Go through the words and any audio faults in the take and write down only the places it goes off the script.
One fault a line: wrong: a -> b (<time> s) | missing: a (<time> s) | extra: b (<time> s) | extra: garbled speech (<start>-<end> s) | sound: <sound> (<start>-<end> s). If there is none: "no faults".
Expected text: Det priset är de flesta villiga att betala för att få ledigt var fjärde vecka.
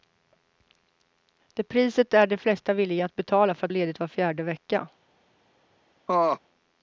missing: få (3.7 s)
sound: laugh (6.1-6.4 s)